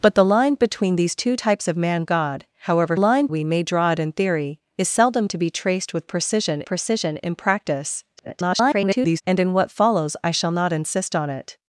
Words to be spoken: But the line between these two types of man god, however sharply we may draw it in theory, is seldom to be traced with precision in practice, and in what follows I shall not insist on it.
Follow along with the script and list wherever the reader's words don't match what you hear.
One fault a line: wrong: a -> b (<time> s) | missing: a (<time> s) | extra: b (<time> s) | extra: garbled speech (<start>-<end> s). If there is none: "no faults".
wrong: sharply -> line (3.0 s)
extra: precision (6.6 s)
extra: garbled speech (8.2-9.2 s)